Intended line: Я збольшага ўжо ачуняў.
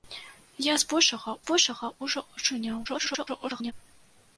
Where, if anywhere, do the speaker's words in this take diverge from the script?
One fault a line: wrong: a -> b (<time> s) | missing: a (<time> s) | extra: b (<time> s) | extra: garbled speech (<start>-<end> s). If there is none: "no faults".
extra: збольшага (1.4 s)
extra: garbled speech (2.8-3.7 s)